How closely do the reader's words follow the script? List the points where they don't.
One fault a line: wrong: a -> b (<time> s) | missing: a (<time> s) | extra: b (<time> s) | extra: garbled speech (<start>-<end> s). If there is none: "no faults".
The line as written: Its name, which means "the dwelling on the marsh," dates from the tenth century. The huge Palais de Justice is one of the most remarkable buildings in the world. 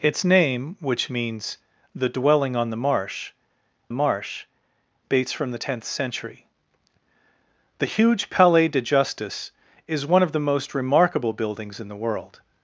extra: marsh (3.9 s)